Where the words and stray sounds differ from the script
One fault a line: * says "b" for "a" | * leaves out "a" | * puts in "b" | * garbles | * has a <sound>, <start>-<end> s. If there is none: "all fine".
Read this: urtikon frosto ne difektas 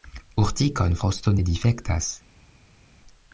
all fine